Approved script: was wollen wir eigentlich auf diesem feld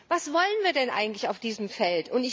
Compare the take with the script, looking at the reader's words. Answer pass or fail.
fail